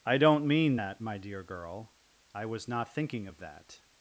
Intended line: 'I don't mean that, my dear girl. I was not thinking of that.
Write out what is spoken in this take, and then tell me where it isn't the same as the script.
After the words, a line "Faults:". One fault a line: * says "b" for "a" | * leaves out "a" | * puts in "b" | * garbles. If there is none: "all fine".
'I don't mean that, my dear girl. I was not thinking of that.
Faults:
all fine